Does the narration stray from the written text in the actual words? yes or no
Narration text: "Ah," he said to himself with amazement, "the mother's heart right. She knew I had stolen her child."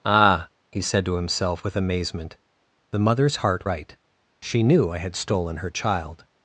no